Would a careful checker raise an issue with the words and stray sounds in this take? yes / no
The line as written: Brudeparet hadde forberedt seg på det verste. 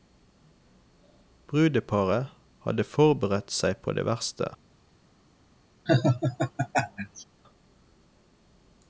yes